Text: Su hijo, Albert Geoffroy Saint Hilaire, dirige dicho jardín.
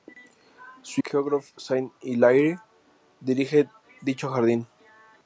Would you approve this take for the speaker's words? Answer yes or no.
no